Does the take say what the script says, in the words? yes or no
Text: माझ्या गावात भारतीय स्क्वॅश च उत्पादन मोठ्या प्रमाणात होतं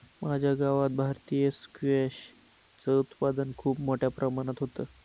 no